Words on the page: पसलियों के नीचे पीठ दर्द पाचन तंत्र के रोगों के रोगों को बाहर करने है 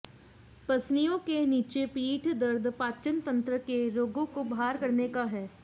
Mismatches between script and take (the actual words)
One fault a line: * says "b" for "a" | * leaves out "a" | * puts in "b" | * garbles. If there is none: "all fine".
* leaves out "के रोगों"
* puts in "का"